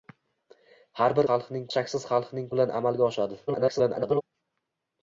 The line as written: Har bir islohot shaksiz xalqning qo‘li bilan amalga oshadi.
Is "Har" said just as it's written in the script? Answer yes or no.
yes